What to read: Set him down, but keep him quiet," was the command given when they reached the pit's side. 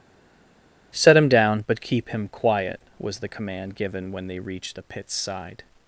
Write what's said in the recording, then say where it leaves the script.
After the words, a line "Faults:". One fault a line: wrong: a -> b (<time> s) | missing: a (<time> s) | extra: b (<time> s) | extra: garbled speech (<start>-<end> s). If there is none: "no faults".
Set him down, but keep him quiet," was the command given when they reached the pit's side.
Faults:
no faults